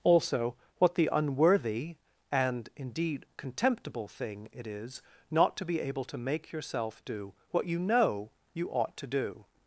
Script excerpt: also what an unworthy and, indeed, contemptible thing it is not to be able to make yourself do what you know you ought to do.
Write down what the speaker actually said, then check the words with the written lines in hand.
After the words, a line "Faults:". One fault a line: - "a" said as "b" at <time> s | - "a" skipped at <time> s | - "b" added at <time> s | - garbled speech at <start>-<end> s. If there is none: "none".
also what the unworthy and, indeed, contemptible thing it is not to be able to make yourself do what you know you ought to do.
Faults:
- "an" said as "the" at 0.9 s